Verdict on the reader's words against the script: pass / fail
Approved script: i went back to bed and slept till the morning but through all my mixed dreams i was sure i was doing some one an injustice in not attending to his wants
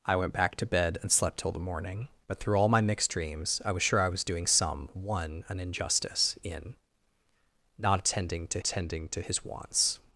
fail